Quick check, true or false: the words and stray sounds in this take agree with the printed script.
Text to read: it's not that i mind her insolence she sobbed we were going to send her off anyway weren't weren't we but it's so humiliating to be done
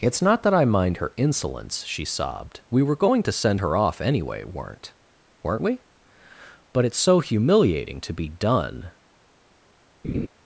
false